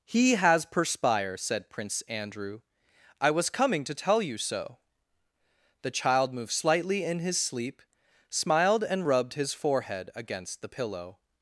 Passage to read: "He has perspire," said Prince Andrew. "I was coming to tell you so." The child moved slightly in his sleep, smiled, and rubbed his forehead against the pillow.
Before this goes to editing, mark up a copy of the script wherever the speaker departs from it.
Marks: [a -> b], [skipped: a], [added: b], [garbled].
"He has perspire," said Prince Andrew. "I was coming to tell you so." The child moved slightly in his sleep, smiled, and rubbed his forehead against the pillow.